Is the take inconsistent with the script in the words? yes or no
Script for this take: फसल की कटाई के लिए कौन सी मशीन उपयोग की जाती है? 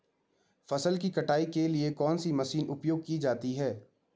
no